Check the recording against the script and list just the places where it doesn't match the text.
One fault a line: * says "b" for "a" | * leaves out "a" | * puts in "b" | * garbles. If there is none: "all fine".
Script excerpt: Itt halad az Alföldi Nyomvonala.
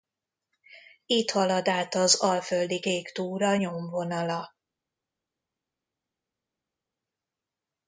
* puts in "át"
* puts in "Kék Túra"